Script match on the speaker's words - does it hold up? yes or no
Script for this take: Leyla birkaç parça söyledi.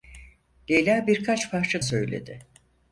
yes